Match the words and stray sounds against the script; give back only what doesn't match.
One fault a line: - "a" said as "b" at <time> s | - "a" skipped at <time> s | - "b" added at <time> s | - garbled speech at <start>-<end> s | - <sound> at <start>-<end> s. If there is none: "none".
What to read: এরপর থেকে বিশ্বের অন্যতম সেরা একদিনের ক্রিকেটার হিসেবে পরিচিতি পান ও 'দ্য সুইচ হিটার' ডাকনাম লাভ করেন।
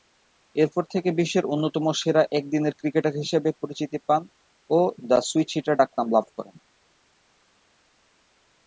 none